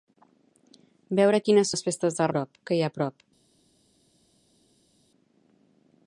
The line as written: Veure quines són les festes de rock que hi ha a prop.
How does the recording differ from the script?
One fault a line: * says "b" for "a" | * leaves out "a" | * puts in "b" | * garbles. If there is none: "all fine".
* leaves out "són"
* says "prop" for "rock"